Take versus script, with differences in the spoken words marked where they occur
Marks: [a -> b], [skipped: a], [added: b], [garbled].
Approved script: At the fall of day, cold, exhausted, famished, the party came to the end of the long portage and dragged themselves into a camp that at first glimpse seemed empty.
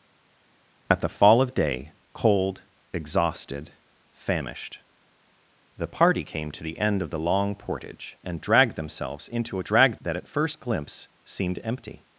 At the fall of day, cold, exhausted, famished, the party came to the end of the long portage and dragged themselves into a [camp -> dragged] that at first glimpse seemed empty.